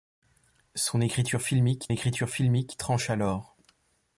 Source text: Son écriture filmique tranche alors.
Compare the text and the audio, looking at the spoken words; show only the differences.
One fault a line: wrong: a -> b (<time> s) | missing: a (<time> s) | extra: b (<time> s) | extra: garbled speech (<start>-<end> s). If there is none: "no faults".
extra: écriture filmique (1.9 s)